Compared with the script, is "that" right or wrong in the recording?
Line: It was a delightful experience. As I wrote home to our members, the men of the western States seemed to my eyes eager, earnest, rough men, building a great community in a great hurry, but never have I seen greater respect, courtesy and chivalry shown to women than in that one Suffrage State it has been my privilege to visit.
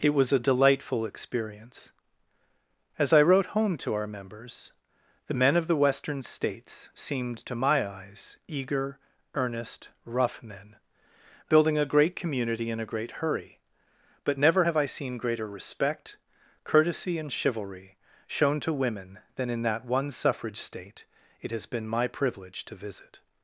right